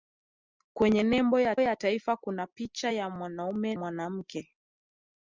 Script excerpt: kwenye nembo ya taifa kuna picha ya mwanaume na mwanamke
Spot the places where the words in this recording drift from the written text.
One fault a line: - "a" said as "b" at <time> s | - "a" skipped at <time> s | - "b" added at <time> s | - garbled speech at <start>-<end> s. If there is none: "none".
- "ya" added at 1.6 s
- "na" skipped at 3.7 s